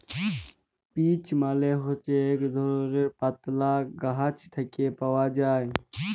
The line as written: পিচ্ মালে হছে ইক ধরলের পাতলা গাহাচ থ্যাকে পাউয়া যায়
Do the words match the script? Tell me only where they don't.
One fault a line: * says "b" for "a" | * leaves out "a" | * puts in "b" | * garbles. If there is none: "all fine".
all fine